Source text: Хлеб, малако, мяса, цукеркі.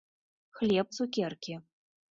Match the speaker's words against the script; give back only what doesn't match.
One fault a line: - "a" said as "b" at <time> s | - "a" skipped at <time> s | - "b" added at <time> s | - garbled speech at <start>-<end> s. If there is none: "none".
- "малако мяса" skipped at 0.9 s